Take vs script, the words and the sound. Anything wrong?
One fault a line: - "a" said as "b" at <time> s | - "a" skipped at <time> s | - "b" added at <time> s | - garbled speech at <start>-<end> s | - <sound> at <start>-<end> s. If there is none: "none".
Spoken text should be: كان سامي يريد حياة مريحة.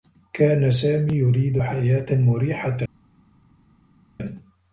none